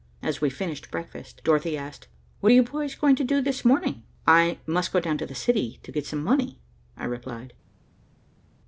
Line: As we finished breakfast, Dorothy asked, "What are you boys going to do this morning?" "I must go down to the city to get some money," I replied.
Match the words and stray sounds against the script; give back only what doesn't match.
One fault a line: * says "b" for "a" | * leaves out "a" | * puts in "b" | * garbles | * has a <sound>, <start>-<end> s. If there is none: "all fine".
all fine